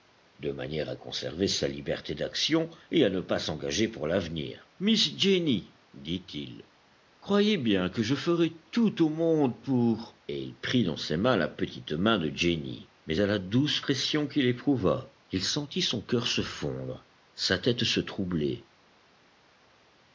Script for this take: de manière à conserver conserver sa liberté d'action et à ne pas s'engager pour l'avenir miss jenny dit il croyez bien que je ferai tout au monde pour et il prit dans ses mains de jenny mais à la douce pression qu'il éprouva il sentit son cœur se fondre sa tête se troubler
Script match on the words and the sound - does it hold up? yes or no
no